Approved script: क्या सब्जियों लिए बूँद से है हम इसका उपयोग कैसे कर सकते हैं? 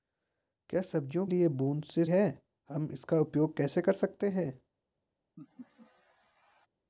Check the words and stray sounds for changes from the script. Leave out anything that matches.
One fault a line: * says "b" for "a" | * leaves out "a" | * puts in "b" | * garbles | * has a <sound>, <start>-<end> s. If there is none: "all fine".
* has a laugh, 5.4-6.7 s